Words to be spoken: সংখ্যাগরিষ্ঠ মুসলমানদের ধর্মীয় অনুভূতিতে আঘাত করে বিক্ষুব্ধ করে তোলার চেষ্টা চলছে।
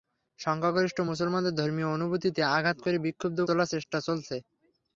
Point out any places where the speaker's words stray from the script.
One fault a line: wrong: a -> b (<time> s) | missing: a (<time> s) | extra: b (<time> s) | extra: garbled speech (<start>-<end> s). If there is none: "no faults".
missing: করে (3.4 s)